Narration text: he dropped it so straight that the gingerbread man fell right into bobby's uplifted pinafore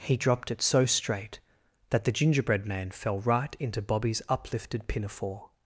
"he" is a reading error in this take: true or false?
false